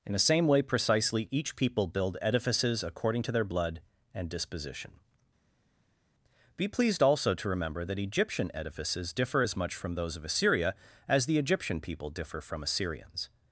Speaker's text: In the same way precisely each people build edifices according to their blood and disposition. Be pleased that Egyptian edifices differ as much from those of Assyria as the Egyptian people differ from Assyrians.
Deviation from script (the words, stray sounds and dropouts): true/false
true